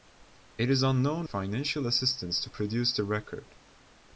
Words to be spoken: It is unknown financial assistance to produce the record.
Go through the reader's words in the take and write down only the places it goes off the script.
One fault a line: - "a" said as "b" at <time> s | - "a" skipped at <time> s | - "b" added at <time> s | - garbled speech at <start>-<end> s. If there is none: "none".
none